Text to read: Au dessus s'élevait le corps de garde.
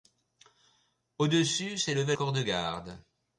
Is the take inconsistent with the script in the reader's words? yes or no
yes